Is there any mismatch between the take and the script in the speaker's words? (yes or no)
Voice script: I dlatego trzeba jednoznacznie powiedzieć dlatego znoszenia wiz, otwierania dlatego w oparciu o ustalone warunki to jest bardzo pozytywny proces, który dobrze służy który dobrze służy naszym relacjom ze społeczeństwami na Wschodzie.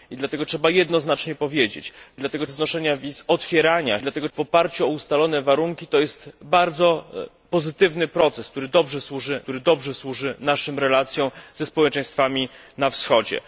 no